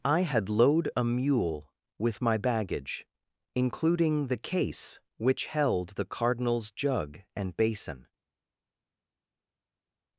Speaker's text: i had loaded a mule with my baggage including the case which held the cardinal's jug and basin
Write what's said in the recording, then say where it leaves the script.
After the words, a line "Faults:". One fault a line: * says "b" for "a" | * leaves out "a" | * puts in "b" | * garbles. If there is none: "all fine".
i had load a mule with my baggage including the case which held the cardinal's jug and basin
Faults:
* says "load" for "loaded"